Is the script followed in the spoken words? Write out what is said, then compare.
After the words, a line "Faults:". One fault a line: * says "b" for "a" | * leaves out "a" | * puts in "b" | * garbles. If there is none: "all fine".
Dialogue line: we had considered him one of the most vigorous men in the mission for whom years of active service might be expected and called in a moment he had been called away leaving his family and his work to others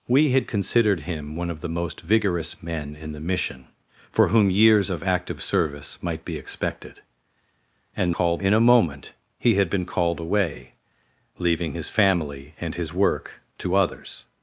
we had considered him one of the most vigorous men in the mission for whom years of active service might be expected and called in a moment he had been called away leaving his family and his work to others
Faults:
all fine